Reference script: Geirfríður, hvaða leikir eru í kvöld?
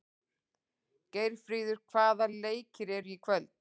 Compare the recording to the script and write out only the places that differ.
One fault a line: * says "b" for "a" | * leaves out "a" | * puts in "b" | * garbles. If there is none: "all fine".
all fine